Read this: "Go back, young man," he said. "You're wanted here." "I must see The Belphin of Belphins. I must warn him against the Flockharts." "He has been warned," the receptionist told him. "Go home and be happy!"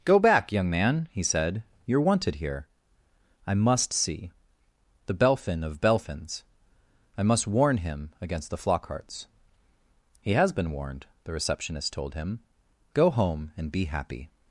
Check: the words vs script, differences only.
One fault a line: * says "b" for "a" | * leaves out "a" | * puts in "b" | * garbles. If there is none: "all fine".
all fine